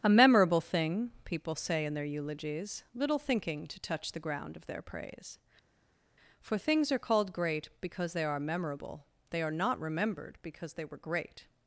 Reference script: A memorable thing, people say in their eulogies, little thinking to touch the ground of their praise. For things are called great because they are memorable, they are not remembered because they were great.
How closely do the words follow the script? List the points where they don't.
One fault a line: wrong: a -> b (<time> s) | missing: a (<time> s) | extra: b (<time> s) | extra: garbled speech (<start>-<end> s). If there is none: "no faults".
no faults